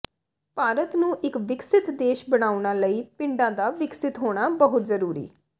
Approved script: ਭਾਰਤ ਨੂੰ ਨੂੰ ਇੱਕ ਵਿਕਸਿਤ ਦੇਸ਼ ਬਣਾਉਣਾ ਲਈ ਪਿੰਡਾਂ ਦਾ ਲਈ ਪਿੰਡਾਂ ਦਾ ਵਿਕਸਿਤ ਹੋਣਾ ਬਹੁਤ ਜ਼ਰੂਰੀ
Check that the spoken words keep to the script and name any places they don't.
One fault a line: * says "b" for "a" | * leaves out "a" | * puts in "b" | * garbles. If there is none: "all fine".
* leaves out "ਨੂੰ"
* leaves out "ਲਈ ਪਿੰਡਾਂ ਦਾ"